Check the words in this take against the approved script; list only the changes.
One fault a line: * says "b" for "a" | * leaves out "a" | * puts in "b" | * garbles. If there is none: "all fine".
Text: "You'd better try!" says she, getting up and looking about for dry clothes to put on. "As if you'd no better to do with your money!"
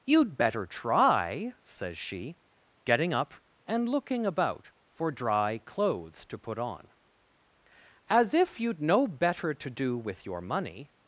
all fine